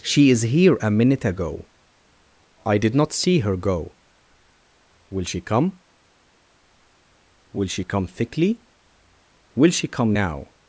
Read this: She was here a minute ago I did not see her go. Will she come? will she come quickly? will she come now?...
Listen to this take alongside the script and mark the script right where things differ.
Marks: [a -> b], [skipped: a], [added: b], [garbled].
She [was -> is] here a minute ago I did not see her go. Will she come? will she come [quickly? -> thickly] will she come now?...